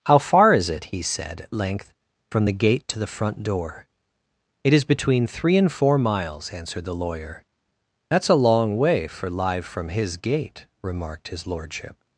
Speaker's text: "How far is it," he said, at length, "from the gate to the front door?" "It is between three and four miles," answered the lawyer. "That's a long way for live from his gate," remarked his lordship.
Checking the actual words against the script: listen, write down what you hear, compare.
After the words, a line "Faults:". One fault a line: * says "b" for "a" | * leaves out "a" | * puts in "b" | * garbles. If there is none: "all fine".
"How far is it," he said, at length, "from the gate to the front door?" "It is between three and four miles," answered the lawyer. "That's a long way for live from his gate," remarked his lordship.
Faults:
all fine